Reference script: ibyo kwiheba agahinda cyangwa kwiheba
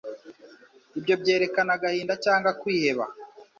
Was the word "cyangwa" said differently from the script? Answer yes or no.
no